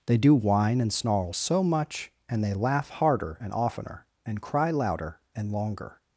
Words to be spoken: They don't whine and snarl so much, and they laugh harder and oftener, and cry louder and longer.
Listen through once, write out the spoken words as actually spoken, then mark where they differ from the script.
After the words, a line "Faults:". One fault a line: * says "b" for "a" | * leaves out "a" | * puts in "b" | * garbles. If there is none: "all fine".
They do whine and snarl so much, and they laugh harder and oftener, and cry louder and longer.
Faults:
* says "do" for "don't"